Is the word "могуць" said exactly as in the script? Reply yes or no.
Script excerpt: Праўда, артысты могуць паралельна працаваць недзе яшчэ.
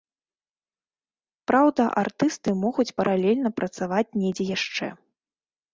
yes